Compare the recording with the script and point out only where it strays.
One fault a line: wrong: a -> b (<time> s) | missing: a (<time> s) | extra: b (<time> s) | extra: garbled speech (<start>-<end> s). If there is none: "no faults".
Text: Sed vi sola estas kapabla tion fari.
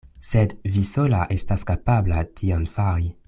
no faults